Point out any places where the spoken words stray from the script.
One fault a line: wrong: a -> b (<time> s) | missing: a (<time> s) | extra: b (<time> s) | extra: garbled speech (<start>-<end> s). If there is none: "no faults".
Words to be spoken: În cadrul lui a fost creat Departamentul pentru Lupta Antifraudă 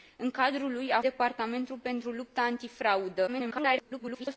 missing: fost creat (1.0 s)
extra: garbled speech (3.3-4.4 s)